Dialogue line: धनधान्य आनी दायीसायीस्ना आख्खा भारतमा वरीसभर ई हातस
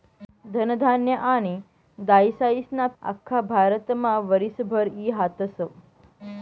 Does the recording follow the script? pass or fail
pass